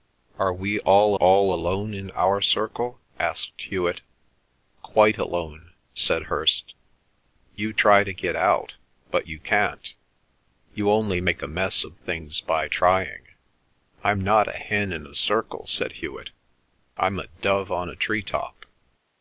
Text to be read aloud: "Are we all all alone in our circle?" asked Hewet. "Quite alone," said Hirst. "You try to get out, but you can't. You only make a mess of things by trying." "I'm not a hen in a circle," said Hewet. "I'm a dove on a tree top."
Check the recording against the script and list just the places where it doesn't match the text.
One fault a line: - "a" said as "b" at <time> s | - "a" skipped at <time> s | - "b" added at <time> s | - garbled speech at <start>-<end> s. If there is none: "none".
none